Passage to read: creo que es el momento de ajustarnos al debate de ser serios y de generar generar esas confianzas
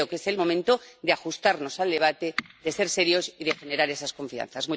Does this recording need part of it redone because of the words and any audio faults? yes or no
yes